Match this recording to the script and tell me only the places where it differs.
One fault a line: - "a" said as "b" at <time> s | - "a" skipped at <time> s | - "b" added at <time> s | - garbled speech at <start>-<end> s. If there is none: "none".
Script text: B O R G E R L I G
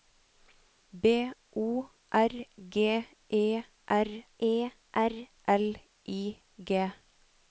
- "E R" added at 4.4 s